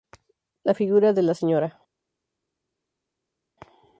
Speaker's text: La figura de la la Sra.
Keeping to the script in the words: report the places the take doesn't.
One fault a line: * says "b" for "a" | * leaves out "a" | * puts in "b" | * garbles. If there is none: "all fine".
* leaves out "la"